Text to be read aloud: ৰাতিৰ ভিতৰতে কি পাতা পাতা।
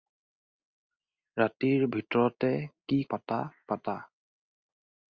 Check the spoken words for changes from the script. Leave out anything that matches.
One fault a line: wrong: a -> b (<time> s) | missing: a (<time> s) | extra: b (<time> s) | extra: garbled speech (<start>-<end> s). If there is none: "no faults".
no faults